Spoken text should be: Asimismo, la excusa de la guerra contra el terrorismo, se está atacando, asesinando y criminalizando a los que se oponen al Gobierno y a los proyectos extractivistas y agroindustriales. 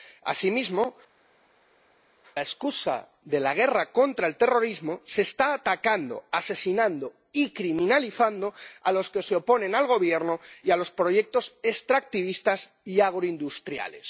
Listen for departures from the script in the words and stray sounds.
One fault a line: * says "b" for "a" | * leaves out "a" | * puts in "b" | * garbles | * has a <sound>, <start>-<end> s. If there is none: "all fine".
all fine